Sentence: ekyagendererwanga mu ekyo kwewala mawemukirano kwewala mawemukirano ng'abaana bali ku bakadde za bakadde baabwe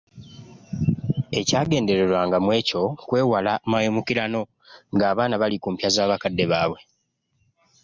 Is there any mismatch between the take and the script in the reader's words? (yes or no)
yes